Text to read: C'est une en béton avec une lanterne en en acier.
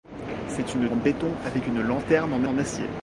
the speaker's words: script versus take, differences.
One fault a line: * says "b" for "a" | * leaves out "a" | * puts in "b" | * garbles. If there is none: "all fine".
all fine